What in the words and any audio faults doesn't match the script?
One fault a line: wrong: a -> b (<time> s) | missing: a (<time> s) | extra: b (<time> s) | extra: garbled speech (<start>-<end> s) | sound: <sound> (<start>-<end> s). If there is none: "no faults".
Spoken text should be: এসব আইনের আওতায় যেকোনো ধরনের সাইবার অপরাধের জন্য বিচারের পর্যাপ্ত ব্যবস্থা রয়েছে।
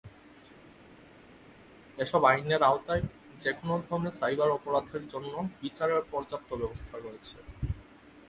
no faults